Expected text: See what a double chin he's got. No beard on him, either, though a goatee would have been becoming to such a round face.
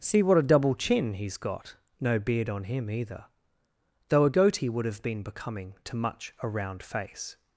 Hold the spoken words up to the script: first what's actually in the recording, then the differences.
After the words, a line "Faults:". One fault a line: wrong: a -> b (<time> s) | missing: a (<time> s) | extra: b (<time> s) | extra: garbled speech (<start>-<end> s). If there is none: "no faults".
See what a double chin he's got. No beard on him, either, though a goatee would have been becoming to much a round face.
Faults:
wrong: such -> much (6.0 s)